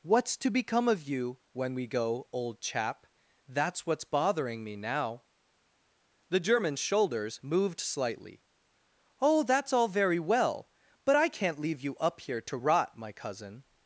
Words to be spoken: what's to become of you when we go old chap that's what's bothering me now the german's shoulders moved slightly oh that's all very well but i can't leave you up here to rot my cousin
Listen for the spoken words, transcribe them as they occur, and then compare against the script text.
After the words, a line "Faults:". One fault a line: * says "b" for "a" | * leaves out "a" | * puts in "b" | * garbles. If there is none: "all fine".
what's to become of you when we go old chap that's what's bothering me now the german's shoulders moved slightly oh that's all very well but i can't leave you up here to rot my cousin
Faults:
all fine